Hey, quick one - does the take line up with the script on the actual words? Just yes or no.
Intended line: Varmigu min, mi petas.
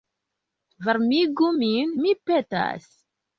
yes